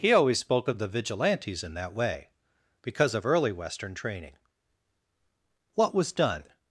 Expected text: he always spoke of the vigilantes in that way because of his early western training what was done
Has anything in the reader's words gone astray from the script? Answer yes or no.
yes